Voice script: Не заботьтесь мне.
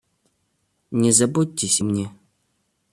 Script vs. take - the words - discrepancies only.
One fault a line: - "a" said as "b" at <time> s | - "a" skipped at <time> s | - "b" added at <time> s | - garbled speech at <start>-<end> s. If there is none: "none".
none